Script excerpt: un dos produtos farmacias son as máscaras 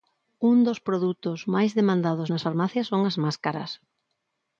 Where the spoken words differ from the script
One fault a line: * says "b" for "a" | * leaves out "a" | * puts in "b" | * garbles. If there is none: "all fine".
* puts in "máis demandados nas"